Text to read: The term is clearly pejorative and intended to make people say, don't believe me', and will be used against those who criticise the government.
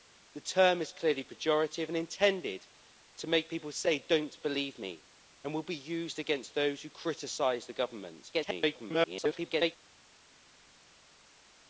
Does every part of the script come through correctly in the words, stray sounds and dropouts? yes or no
no